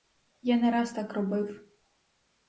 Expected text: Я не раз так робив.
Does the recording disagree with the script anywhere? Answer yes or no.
no